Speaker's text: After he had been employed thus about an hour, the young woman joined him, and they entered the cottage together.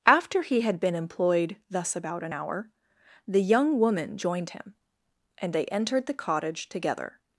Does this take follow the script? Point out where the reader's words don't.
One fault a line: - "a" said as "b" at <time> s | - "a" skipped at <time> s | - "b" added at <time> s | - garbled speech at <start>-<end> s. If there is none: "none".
none